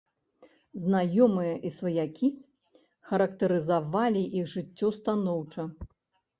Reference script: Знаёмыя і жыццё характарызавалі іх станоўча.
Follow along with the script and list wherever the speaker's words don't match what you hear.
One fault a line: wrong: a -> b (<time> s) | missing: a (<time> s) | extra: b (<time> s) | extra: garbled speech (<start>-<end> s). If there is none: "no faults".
wrong: жыццё -> сваякі (1.8 s)
extra: жыццё (4.6 s)